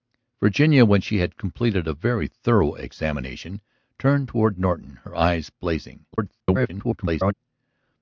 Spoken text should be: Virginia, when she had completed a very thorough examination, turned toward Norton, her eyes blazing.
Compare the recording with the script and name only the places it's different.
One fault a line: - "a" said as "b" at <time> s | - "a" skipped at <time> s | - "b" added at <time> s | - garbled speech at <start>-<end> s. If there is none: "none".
- garbled speech at 6.1-7.3 s